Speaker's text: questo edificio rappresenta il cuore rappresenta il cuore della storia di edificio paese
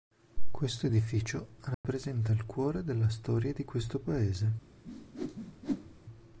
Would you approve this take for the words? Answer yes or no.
no